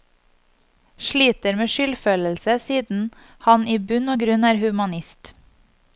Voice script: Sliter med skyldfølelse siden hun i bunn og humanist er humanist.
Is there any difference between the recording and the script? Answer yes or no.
yes